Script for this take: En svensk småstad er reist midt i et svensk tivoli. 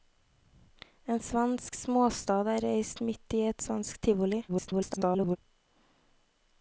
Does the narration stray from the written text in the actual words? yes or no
yes